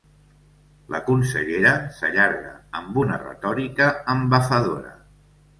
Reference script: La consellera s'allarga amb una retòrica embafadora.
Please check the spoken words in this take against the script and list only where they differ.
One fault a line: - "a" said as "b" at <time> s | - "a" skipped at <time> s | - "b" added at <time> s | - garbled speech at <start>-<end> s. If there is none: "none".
none